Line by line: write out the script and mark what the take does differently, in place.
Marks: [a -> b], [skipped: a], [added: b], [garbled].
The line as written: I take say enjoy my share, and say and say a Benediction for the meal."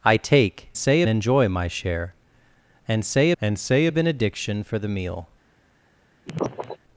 I take say enjoy my share, and say and say a Benediction for the meal."